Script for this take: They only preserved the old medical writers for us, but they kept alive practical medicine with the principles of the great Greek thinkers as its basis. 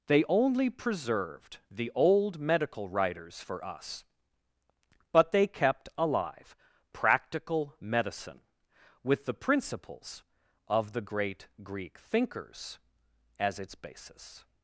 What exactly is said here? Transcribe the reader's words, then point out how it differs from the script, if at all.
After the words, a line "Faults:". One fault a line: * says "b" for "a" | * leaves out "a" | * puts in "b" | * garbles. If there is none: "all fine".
They only preserved the old medical writers for us, but they kept alive practical medicine with the principles of the great Greek thinkers as its basis.
Faults:
all fine